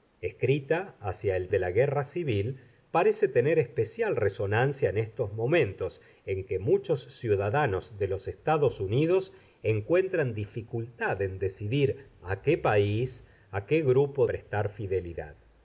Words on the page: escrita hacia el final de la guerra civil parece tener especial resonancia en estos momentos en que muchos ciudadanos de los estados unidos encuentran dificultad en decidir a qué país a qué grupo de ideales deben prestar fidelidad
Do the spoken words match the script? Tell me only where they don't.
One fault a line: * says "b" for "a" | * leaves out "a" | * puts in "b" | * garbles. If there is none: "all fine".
* leaves out "final"
* leaves out "de ideales deben"